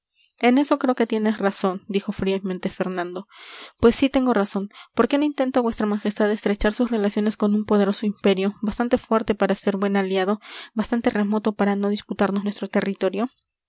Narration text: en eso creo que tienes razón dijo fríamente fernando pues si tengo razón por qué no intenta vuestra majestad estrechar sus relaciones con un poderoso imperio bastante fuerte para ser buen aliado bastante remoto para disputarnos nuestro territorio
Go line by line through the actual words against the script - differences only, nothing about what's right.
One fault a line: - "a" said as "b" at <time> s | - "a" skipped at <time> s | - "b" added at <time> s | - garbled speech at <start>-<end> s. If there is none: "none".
- "no" added at 11.8 s